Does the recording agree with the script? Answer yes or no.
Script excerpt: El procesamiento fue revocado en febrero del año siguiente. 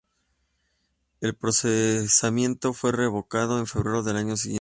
yes